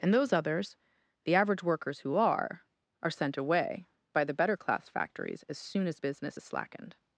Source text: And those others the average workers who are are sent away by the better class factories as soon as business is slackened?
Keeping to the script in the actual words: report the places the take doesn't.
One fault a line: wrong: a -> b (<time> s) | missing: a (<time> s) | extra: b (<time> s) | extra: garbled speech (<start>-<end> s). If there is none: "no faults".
no faults